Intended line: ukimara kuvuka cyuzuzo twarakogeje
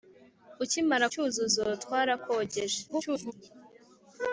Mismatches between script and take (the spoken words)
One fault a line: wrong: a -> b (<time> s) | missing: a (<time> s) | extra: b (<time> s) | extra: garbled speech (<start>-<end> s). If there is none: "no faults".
missing: kuvuka (1.1 s)
extra: garbled speech (2.9-3.3 s)